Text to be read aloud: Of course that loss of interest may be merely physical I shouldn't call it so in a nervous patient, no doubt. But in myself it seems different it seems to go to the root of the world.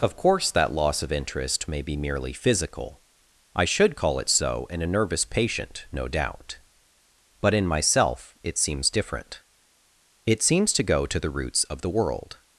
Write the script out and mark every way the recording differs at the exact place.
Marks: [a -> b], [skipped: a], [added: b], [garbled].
Of course that loss of interest may be merely physical I [shouldn't -> should] call it so in a nervous patient, no doubt. But in myself it seems different it seems to go to the [root -> roots] of the world.